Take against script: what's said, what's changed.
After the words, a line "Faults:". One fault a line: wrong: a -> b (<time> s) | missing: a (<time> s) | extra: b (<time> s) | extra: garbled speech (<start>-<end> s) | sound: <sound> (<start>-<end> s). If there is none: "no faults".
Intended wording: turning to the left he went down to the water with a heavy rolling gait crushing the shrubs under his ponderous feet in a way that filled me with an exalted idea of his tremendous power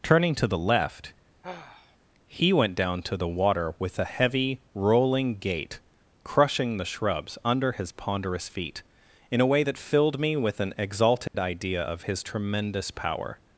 turning to the left he went down to the water with a heavy rolling gait crushing the shrubs under his ponderous feet in a way that filled me with an exalted idea of his tremendous power
Faults:
sound: sigh (1.4-2.0 s)
sound: dropout (11.3-11.3 s)